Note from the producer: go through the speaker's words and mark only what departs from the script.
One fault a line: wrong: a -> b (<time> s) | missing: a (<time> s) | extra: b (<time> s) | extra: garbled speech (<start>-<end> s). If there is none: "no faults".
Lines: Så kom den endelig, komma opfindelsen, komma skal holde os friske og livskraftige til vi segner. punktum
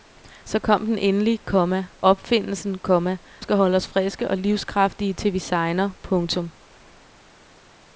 no faults